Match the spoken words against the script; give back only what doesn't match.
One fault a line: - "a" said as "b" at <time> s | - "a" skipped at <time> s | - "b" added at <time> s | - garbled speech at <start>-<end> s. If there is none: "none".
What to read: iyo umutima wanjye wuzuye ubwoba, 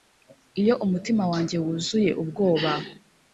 none